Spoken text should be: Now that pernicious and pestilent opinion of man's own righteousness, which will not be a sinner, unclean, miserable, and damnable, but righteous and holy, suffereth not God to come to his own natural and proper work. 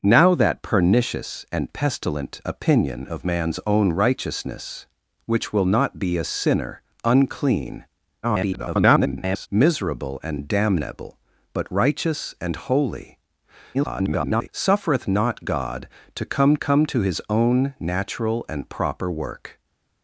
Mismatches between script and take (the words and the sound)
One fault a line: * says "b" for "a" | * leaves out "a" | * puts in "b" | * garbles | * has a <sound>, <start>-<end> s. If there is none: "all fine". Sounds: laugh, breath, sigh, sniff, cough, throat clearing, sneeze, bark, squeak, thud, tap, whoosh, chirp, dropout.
* garbles
* garbles
* puts in "come"